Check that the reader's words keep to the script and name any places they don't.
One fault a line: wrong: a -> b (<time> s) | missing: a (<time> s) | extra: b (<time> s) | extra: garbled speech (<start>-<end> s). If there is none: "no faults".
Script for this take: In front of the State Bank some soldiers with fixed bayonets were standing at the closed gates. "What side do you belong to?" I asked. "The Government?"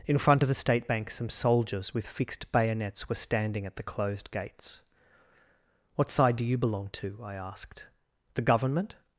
no faults